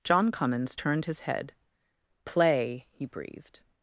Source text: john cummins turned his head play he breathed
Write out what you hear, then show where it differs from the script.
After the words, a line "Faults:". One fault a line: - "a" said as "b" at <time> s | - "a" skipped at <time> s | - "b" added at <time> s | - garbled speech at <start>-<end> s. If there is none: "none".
john cummins turned his head play he breathed
Faults:
none